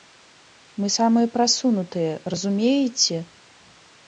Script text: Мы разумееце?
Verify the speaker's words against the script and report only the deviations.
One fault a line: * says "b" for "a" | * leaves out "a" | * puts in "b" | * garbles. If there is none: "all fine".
* puts in "самыя прасунутыя"